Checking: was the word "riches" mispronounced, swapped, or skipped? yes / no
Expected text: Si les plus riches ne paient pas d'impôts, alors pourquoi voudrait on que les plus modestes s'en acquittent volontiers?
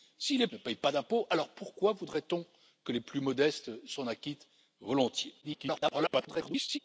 yes